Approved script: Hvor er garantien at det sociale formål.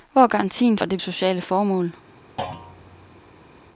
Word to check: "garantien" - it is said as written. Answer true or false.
true